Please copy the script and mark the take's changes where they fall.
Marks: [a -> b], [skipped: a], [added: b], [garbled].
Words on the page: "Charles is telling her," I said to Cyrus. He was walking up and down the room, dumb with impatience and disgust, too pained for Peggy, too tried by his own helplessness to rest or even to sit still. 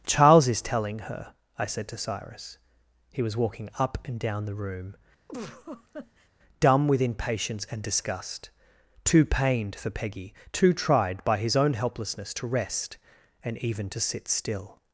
"Charles is telling her," I said to Cyrus. He was walking up and down the room, dumb with impatience and disgust, too pained for Peggy, too tried by his own helplessness to rest [or -> and] even to sit still.